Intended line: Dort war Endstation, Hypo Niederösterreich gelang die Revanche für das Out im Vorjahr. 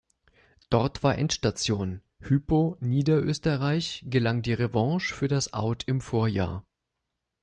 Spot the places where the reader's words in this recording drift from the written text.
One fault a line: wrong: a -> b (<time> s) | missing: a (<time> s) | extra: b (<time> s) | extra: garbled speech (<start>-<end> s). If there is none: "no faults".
no faults